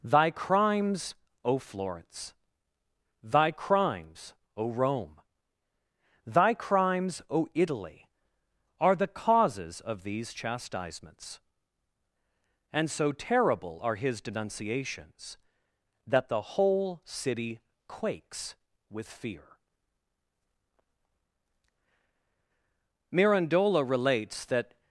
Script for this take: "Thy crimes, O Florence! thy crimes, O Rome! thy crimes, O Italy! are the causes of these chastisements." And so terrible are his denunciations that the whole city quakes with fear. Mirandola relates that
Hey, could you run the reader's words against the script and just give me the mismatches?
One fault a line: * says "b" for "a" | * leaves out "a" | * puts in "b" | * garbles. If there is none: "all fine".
all fine